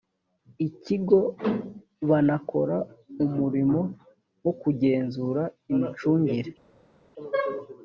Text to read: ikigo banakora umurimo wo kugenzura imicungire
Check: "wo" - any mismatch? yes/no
no